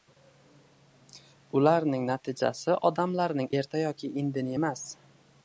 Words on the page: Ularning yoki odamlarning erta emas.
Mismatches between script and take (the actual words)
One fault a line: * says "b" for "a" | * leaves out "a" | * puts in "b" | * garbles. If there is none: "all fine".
* says "natijasi" for "yoki"
* puts in "yoki indini"